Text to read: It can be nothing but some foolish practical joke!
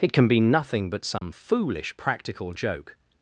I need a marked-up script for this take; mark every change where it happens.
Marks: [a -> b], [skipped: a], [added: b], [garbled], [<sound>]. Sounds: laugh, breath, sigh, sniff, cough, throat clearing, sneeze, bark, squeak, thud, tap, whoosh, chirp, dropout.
It can be nothing but some [dropout] foolish practical joke!